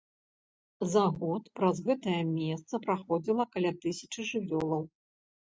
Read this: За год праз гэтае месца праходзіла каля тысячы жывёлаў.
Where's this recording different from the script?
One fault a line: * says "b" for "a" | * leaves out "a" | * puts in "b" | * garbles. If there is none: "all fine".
all fine